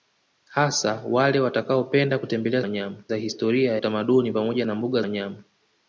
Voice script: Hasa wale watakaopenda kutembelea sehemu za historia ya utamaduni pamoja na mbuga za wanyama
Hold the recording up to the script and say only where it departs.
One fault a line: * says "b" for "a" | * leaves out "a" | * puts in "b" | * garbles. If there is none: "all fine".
* says "wanyama" for "sehemu"
* leaves out "ya"
* leaves out "za"